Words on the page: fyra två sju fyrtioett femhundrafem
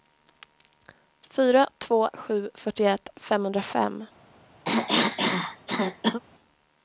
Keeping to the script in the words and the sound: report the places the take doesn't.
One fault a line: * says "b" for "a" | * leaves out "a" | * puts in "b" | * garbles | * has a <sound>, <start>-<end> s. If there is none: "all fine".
* has a cough, 4.7-6.2 s